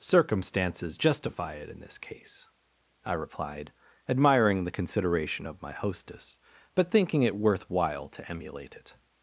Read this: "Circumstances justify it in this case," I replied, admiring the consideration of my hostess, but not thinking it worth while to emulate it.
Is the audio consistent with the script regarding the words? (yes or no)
no